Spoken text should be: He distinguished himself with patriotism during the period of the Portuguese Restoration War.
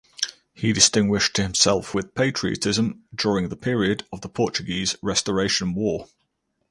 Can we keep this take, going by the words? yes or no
yes